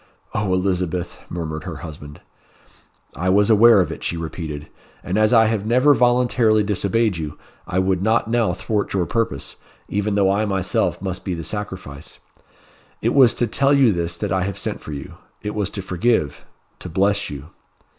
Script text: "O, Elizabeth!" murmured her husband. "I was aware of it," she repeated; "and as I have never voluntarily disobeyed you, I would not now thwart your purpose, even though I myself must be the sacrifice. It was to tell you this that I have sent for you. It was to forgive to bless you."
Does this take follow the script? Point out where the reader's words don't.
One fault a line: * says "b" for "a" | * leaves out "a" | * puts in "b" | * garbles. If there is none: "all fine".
all fine